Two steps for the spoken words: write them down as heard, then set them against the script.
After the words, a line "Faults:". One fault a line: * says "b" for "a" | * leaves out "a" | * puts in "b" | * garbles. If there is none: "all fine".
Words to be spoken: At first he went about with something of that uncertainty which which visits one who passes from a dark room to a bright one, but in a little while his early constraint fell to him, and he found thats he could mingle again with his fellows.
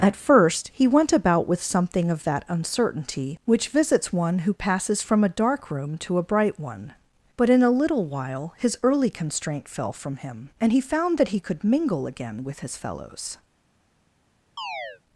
At first he went about with something of that uncertainty which visits one who passes from a dark room to a bright one, but in a little while his early constraint fell from him, and he found that he could mingle again with his fellows.
Faults:
* leaves out "which"
* says "from" for "to"
* says "that" for "thats"